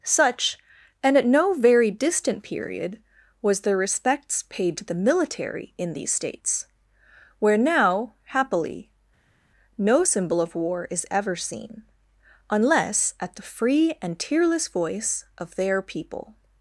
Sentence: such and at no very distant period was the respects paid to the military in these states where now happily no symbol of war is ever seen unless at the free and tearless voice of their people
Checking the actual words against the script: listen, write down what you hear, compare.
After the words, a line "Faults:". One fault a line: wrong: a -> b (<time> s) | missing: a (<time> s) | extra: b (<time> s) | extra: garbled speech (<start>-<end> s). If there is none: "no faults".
such and at no very distant period was the respects paid to the military in these states where now happily no symbol of war is ever seen unless at the free and tearless voice of their people
Faults:
no faults